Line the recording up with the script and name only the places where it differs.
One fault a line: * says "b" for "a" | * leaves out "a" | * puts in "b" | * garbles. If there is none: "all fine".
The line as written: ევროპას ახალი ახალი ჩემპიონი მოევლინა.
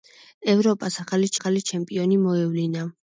all fine